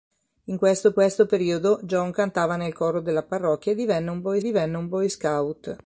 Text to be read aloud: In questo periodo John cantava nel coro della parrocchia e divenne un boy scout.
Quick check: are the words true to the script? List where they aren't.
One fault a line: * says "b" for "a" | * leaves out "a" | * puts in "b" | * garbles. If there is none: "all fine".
* puts in "questo"
* puts in "divenne un boy"